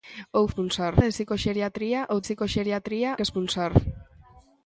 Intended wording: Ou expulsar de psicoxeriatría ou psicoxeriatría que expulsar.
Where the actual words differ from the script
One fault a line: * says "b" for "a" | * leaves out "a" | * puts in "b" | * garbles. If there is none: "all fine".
all fine